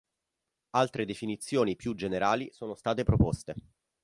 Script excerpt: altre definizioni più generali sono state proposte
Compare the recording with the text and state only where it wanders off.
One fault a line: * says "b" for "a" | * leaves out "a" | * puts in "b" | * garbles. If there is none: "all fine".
all fine